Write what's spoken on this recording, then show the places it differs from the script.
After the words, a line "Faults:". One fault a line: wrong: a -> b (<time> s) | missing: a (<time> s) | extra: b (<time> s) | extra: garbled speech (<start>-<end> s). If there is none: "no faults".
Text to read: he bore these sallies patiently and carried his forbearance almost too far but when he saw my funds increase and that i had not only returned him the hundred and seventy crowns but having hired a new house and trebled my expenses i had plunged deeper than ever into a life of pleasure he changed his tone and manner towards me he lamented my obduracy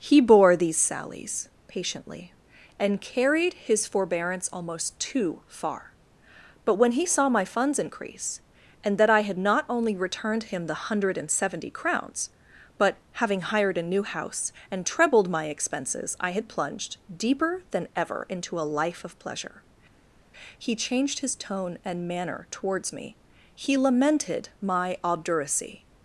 he bore these sallies patiently and carried his forbearance almost too far but when he saw my funds increase and that i had not only returned him the hundred and seventy crowns but having hired a new house and trebled my expenses i had plunged deeper than ever into a life of pleasure he changed his tone and manner towards me he lamented my obduracy
Faults:
no faults